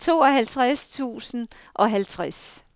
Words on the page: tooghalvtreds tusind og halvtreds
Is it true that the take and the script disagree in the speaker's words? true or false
false